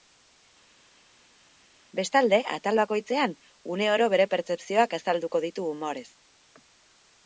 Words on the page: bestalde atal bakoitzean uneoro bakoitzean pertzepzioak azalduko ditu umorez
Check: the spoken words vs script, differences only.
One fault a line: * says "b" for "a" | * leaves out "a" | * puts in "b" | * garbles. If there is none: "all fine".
* says "bere" for "bakoitzean"